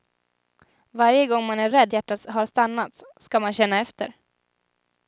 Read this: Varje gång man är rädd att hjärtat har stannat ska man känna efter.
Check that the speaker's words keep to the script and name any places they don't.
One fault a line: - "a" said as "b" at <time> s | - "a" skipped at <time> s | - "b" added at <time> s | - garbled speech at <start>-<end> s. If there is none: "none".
- "att" skipped at 1.9 s